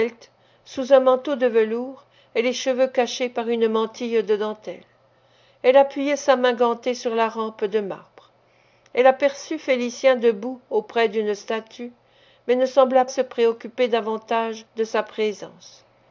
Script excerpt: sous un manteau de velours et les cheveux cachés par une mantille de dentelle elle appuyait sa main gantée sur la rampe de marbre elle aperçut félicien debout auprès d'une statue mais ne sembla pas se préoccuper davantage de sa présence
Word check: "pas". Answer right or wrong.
wrong